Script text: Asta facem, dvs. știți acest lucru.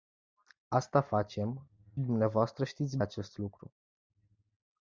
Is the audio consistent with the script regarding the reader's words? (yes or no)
yes